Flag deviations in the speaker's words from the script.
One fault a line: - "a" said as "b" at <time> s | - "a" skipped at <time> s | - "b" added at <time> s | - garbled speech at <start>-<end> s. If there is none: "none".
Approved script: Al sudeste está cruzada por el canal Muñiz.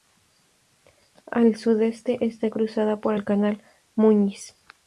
none